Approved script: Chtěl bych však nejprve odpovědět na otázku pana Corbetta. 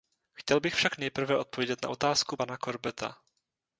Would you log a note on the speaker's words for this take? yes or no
no